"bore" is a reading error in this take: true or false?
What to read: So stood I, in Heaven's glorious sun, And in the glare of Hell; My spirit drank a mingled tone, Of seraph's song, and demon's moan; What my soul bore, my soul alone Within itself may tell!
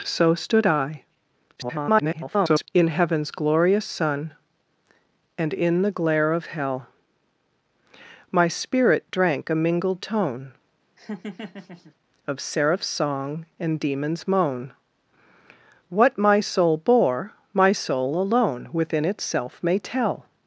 false